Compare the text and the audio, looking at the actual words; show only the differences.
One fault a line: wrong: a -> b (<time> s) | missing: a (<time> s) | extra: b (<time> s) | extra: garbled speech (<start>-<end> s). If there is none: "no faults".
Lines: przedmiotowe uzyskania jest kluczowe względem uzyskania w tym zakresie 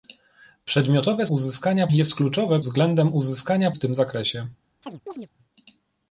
no faults